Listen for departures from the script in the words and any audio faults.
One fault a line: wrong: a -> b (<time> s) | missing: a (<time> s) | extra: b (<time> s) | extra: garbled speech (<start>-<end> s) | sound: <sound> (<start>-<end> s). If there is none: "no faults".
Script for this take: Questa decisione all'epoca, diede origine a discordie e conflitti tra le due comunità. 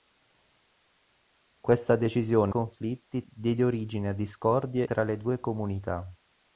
wrong: all'epoca -> conflitti (2.5 s)
missing: e conflitti (4.9 s)